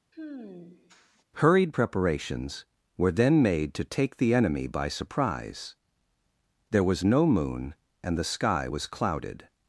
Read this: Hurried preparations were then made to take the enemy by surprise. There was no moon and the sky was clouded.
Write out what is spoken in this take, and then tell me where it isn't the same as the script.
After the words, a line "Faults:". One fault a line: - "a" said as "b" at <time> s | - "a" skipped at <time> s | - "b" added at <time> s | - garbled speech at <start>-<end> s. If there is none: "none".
Hurried preparations were then made to take the enemy by surprise. There was no moon and the sky was clouded.
Faults:
none